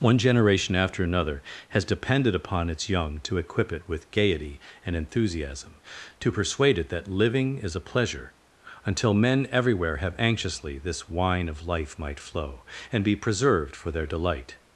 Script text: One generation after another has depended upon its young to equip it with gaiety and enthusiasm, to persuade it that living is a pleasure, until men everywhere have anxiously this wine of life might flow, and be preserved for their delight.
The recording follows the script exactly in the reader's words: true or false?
true